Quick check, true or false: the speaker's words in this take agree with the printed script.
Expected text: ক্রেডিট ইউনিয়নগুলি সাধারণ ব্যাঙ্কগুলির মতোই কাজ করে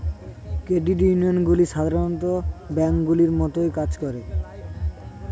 true